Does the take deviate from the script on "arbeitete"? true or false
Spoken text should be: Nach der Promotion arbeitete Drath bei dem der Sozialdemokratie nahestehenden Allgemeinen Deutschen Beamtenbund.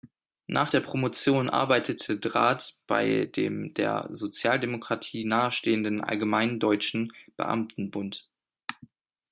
false